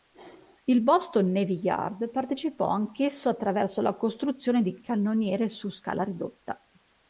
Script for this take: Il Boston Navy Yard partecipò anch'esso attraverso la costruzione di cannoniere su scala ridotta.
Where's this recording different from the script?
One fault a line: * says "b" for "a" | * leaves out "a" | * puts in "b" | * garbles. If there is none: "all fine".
all fine